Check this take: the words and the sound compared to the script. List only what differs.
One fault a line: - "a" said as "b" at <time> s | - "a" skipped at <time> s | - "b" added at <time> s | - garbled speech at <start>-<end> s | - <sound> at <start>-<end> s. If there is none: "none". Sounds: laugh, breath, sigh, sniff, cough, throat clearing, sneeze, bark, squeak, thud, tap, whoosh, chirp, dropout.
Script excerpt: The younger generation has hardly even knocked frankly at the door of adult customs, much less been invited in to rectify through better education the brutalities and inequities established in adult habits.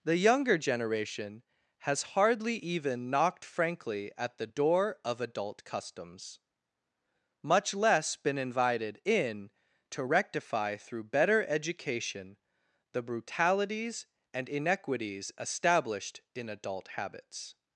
none